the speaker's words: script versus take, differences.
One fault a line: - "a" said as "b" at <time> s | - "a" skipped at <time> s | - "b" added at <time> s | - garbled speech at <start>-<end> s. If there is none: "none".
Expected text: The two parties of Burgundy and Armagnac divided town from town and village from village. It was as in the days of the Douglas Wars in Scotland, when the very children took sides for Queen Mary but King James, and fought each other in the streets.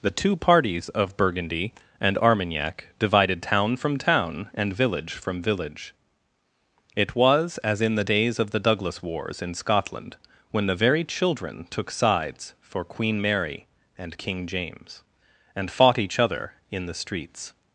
- "but" said as "and" at 14.0 s